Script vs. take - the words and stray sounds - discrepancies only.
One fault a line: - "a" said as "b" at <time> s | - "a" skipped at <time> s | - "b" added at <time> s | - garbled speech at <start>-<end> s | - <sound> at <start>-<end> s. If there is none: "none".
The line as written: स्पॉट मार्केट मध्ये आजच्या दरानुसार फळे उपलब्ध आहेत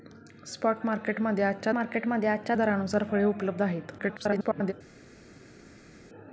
- "मार्केट मध्ये आजच्या" added at 1.7 s
- garbled speech at 4.0-4.7 s